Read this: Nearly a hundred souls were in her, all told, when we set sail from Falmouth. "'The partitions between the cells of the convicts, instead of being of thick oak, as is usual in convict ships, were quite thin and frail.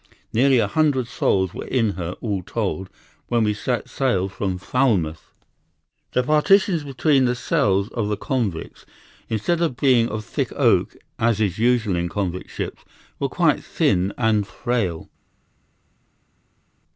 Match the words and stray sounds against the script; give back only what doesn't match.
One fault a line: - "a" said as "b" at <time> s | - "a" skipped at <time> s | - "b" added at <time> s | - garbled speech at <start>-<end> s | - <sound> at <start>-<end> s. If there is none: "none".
none